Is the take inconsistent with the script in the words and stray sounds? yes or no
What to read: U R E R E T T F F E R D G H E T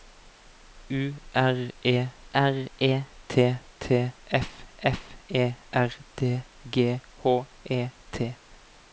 no